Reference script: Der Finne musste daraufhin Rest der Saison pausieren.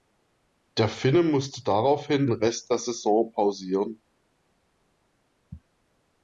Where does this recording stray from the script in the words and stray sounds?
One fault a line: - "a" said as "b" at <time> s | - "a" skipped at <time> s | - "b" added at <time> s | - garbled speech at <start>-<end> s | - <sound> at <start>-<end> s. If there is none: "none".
none